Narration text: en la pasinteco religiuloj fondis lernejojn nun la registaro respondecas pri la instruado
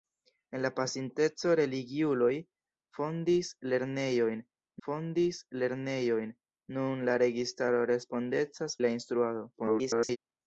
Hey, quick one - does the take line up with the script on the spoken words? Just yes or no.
no